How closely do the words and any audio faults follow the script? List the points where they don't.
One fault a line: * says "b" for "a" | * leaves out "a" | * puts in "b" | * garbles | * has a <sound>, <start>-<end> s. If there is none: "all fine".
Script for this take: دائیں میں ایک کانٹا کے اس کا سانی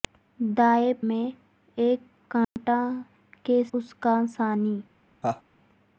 * has a dropout, 2.4-2.6 s
* has a laugh, 5.2-5.4 s